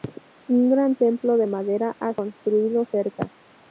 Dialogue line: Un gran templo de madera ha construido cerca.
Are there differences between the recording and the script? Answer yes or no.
no